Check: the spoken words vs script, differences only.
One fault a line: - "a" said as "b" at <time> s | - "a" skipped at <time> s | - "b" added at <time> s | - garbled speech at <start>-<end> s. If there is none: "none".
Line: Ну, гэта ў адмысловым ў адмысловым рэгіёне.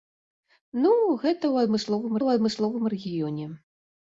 none